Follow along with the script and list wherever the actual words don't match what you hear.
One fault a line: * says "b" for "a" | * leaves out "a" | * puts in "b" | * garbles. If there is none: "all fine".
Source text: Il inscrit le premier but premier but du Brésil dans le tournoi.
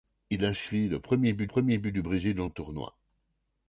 all fine